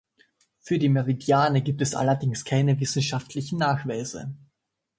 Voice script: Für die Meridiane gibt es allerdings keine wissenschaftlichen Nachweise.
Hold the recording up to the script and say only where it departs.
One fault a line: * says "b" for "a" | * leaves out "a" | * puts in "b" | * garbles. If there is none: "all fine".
all fine